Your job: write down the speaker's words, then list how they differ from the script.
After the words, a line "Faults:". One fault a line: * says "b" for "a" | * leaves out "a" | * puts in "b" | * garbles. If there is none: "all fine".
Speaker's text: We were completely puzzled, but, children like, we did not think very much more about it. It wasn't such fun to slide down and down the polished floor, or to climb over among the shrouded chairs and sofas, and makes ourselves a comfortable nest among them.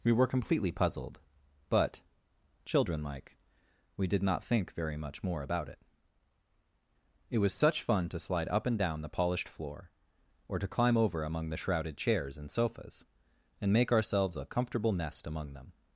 We were completely puzzled, but, children like, we did not think very much more about it. It was such fun to slide up and down the polished floor, or to climb over among the shrouded chairs and sofas, and make ourselves a comfortable nest among them.
Faults:
* says "was" for "wasn't"
* says "up" for "down"
* says "make" for "makes"